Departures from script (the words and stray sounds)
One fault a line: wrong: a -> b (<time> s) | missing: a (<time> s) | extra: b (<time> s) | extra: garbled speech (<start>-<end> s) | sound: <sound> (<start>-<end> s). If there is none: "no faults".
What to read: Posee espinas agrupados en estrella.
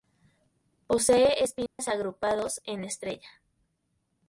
sound: dropout (1.7-1.8 s)